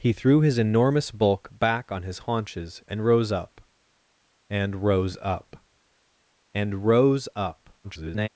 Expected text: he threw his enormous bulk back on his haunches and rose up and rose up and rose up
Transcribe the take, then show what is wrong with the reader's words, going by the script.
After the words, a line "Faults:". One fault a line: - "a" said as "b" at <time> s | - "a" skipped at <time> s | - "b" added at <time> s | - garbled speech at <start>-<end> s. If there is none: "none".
he threw his enormous bulk back on his haunches and rose up and rose up and rose up [garbled]
Faults:
- garbled speech at 7.8-8.3 s